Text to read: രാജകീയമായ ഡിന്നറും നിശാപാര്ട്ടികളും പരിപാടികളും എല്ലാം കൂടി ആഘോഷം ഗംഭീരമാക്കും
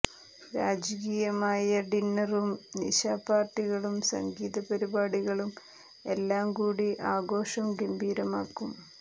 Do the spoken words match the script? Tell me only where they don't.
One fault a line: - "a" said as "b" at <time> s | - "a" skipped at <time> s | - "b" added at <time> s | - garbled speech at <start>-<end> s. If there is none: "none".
- "സംഗീത" added at 4.1 s